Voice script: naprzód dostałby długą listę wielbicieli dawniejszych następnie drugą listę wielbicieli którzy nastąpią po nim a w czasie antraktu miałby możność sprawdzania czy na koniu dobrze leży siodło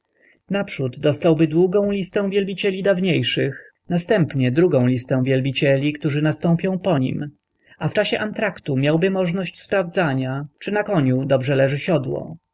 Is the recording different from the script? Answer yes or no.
no